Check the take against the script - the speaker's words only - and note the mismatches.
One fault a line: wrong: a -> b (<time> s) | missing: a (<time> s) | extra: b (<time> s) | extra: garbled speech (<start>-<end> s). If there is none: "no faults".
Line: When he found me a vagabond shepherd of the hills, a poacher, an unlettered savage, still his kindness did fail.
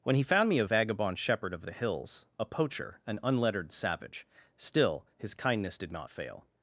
extra: not (5.9 s)